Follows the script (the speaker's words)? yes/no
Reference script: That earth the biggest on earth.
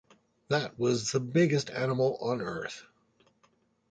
no